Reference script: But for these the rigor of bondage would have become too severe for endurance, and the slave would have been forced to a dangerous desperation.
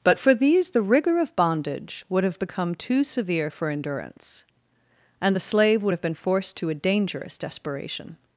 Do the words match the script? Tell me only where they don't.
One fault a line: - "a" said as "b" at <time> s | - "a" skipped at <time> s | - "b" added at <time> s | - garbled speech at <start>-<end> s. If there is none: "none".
none